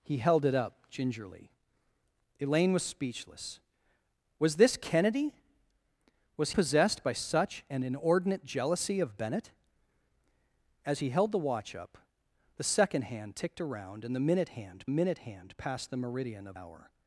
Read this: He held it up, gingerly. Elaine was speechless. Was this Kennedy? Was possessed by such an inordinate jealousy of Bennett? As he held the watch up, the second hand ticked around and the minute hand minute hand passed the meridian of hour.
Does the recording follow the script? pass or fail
pass